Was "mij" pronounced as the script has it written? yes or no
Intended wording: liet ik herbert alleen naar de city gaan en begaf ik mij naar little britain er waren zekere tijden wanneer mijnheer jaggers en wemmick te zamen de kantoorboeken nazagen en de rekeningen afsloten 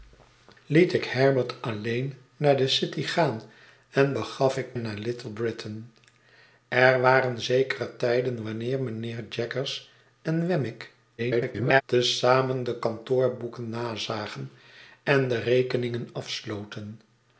no